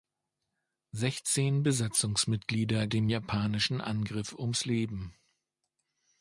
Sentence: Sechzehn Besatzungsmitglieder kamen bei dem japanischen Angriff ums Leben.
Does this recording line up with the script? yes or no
no